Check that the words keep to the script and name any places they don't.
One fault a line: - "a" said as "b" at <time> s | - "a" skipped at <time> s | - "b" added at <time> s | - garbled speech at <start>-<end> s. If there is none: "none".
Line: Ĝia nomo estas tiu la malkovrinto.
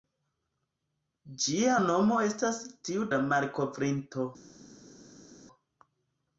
none